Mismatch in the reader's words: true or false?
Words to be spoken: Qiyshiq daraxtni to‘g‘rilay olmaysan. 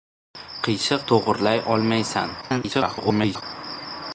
true